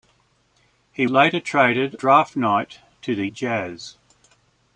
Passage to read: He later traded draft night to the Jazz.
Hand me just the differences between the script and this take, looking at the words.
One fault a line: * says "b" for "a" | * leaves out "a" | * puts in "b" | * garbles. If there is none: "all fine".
all fine